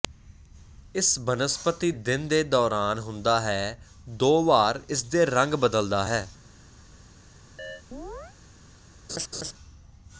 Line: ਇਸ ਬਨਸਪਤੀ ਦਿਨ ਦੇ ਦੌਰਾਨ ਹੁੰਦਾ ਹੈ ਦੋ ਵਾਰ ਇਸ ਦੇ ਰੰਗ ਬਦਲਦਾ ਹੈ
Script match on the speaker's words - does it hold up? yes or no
yes